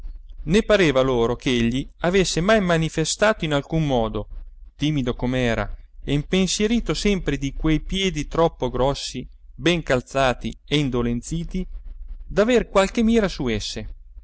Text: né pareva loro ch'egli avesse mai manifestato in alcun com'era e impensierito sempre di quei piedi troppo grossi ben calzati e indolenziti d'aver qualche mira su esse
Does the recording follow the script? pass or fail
fail